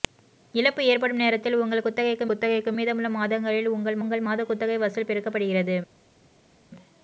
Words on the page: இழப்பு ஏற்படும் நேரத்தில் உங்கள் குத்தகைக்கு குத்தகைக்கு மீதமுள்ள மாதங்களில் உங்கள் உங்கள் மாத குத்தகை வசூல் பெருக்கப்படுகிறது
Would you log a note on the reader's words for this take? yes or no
no